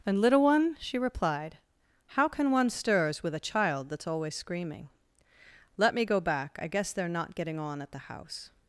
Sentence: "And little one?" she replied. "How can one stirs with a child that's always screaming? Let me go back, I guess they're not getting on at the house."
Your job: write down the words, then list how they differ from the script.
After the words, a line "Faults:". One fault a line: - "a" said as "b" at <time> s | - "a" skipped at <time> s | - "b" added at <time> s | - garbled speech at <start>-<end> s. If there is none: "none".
"And little one?" she replied. "How can one stirs with a child that's always screaming? Let me go back, I guess they're not getting on at the house."
Faults:
none